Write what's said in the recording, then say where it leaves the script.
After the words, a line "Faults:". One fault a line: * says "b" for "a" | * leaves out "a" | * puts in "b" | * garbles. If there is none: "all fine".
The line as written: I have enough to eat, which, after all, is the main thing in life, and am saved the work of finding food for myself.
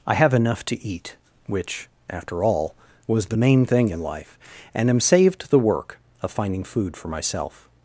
I have enough to eat, which, after all, was the main thing in life, and am saved the work of finding food for myself.
Faults:
* says "was" for "is"